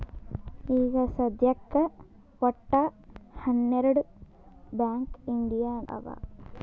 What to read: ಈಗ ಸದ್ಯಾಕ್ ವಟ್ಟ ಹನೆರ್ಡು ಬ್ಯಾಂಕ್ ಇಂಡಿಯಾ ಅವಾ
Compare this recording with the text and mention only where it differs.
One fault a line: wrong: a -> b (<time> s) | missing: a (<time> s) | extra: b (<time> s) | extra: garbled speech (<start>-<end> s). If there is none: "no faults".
no faults